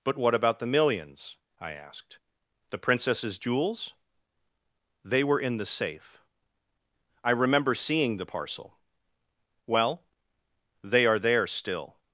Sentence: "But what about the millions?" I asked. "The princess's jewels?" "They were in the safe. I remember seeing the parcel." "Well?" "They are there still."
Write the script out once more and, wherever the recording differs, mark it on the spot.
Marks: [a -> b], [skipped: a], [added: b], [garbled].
"But what about the millions?" I asked. "The princess's jewels?" "They were in the safe. I remember seeing the parcel." "Well?" "They are there still."